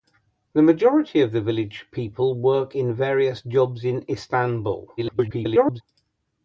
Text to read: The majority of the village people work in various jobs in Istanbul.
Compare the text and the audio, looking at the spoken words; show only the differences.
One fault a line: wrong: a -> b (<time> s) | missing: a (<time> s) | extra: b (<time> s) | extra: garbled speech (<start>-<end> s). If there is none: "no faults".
extra: garbled speech (5.0-5.8 s)